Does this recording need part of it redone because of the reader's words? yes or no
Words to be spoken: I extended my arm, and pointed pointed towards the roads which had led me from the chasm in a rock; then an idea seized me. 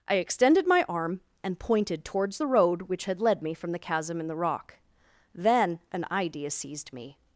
yes